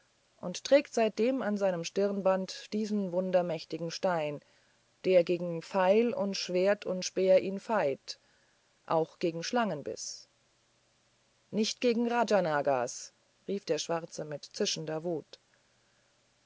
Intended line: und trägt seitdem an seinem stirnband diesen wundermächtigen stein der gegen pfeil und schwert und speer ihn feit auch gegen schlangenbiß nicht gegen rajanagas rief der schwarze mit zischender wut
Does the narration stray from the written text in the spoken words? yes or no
no